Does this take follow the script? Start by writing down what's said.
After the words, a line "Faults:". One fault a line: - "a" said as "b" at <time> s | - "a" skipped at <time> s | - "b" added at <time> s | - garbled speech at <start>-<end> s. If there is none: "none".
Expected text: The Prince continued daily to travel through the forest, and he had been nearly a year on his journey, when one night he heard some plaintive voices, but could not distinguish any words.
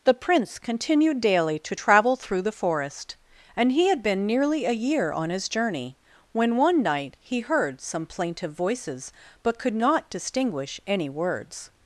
The Prince continued daily to travel through the forest, and he had been nearly a year on his journey, when one night he heard some plaintive voices, but could not distinguish any words.
Faults:
none